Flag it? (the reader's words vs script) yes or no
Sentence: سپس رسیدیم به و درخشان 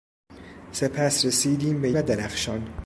no